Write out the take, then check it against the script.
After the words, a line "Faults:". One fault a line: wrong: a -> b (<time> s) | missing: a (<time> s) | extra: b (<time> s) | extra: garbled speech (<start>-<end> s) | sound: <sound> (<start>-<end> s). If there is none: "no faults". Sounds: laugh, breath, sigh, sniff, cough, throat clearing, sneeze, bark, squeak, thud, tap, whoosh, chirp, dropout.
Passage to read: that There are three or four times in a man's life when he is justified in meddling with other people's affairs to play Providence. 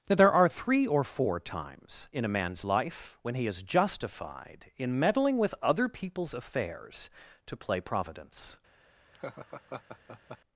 that There are three or four times in a man's life when he is justified in meddling with other people's affairs to play Providence.
Faults:
sound: laugh (9.1-10.4 s)